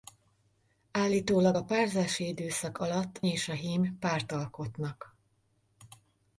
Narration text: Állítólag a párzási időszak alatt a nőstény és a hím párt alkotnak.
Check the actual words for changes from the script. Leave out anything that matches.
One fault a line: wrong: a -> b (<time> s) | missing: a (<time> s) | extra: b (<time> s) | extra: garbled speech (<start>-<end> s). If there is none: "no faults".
missing: a nőstény (3.2 s)